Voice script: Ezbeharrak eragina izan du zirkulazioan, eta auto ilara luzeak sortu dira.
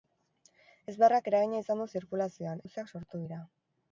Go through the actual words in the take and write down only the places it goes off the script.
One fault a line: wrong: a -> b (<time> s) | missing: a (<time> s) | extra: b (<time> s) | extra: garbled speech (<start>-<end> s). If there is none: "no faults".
missing: eta auto ilara (2.6 s)